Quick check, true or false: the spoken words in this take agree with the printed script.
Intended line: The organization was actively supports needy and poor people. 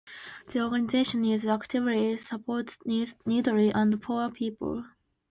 false